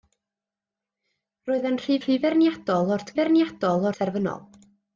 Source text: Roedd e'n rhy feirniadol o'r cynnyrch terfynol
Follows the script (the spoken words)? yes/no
no